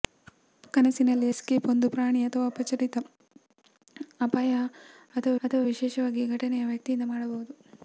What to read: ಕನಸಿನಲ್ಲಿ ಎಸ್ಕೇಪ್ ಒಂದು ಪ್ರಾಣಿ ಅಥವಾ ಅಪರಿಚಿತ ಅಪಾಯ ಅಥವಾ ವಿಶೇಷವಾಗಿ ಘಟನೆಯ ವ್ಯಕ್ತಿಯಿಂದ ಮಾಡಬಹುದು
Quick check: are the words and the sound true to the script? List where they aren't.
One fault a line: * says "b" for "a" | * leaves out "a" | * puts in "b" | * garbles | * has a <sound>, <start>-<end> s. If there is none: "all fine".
* has a whoosh, 0.2-0.4 s
* puts in "ಅಥವಾ"